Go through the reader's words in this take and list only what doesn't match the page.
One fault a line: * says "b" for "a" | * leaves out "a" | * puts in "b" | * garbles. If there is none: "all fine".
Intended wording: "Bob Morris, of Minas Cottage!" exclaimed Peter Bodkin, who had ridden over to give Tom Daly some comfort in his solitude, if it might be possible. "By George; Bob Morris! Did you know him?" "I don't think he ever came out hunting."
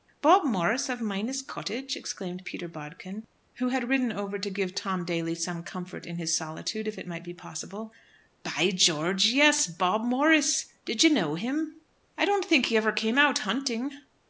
* puts in "yes"